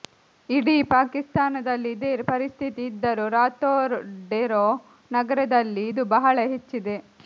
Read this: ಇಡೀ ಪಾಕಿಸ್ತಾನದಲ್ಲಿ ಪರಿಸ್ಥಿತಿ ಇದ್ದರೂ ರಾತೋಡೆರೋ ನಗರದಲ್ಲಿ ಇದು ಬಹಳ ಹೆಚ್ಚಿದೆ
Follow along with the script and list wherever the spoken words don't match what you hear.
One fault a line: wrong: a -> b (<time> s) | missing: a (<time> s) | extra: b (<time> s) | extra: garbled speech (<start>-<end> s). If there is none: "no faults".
extra: ಇದೇ (1.9 s)